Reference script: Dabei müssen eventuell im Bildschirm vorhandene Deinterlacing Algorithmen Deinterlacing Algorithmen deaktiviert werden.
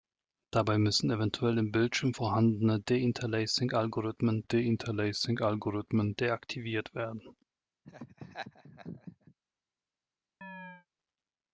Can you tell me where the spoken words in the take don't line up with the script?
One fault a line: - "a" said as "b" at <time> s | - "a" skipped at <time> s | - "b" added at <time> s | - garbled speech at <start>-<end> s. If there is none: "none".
none